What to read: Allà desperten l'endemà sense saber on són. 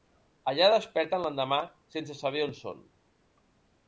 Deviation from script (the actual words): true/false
false